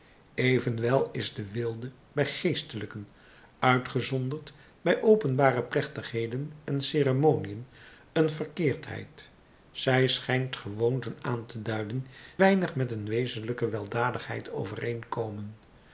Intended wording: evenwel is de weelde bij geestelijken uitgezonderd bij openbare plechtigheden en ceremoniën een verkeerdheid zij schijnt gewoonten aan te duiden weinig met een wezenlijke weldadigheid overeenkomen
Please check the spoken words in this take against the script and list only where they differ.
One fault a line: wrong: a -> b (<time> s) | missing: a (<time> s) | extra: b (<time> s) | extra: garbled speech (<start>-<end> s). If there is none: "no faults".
no faults